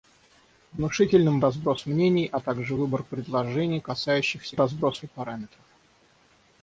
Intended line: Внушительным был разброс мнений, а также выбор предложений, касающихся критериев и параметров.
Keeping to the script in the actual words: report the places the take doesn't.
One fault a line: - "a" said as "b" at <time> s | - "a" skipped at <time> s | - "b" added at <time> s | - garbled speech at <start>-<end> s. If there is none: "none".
- "был" skipped at 1.4 s
- "критериев" said as "разброс" at 4.6 s